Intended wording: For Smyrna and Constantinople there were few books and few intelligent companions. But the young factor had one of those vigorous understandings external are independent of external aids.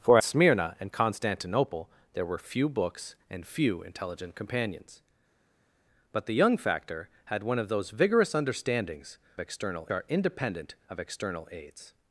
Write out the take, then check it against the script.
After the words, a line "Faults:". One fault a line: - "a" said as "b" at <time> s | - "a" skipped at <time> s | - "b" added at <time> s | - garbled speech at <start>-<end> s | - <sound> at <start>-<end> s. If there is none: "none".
For Smyrna and Constantinople there were few books and few intelligent companions. But the young factor had one of those vigorous understandings external are independent of external aids.
Faults:
none